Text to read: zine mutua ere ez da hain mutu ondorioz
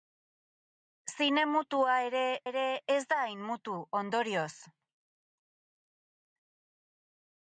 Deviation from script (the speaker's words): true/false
true